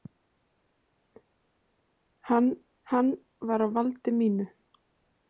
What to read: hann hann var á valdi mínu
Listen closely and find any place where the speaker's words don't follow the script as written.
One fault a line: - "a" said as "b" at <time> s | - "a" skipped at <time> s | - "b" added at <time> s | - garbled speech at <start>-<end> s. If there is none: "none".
none